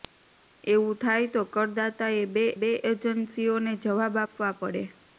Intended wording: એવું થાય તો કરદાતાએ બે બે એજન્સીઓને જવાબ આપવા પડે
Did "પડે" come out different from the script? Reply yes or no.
no